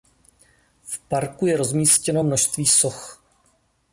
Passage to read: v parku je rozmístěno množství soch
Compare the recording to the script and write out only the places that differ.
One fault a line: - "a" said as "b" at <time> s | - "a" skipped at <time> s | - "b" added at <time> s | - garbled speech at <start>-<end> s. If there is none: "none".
none